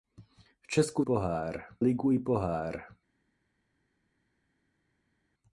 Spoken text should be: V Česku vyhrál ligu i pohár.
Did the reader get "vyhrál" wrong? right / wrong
wrong